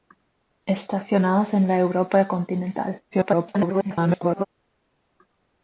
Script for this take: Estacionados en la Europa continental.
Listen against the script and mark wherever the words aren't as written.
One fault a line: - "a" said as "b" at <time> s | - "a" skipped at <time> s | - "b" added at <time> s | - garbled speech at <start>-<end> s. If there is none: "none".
- garbled speech at 3.1-4.5 s